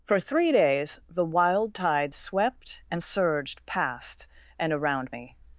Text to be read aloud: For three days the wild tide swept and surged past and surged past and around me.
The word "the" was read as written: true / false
true